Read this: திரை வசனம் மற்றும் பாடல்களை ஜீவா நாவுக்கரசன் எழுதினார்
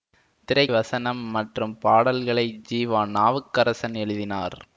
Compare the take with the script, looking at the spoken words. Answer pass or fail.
pass